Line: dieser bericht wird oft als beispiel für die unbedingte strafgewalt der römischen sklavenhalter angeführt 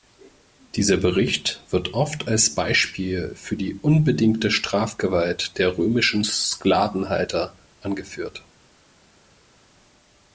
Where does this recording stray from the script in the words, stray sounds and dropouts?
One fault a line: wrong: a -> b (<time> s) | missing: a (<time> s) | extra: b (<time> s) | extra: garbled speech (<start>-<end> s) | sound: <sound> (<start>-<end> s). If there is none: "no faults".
no faults